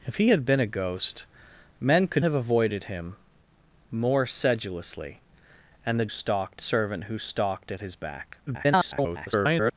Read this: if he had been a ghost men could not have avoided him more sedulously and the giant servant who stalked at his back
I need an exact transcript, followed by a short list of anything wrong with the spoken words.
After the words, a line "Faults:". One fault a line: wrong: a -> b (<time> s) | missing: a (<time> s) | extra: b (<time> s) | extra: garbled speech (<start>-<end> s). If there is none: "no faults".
if he had been a ghost men could have avoided him more sedulously and the stalked servant who stalked at his back [garbled]
Faults:
missing: not (2.2 s)
wrong: giant -> stalked (6.1 s)
extra: garbled speech (8.5-9.7 s)